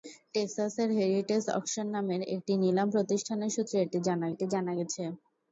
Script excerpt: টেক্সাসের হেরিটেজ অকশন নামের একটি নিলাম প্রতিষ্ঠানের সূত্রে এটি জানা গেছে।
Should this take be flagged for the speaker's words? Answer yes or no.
yes